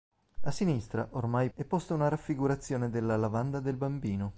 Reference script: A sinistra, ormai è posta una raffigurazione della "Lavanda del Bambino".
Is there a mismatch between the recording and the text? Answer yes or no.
no